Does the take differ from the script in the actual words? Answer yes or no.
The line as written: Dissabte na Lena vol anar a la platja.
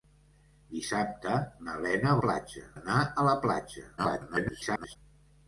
yes